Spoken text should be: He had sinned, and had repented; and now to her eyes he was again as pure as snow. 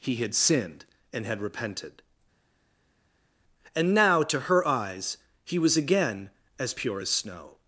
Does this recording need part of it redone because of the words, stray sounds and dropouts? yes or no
no